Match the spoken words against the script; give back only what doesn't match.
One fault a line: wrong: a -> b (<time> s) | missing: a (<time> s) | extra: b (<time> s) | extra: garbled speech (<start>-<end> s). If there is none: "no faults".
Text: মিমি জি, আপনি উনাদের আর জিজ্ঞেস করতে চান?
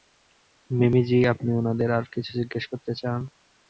extra: কিছু (2.1 s)